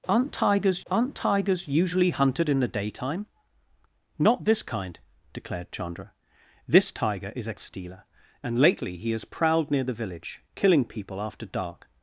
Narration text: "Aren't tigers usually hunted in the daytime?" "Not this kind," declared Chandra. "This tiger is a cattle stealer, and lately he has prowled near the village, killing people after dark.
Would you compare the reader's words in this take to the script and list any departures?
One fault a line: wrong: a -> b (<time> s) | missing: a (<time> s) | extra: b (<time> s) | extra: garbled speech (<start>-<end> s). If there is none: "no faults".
extra: aren't tigers (0.9 s)
missing: cattle (7.5 s)